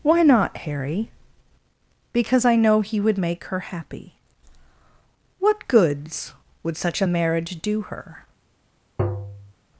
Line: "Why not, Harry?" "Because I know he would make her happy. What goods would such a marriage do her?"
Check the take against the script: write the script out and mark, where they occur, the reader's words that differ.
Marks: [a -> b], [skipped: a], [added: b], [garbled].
"Why not, Harry?" "Because I know he would make her happy. What goods would such a marriage do her?"